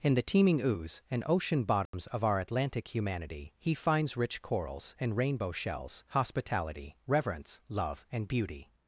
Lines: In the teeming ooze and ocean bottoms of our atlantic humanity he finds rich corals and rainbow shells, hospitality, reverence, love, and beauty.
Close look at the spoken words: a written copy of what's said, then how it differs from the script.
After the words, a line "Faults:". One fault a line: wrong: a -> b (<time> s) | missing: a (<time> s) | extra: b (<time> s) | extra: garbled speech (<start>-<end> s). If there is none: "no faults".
In the teeming ooze and ocean bottoms of our atlantic humanity he finds rich corals and rainbow shells, hospitality, reverence, love, and beauty.
Faults:
no faults